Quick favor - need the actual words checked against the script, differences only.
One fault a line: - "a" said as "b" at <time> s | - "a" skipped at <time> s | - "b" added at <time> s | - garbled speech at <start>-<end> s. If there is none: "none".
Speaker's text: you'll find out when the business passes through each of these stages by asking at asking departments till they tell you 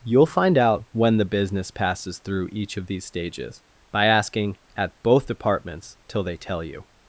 - "asking" said as "both" at 5.0 s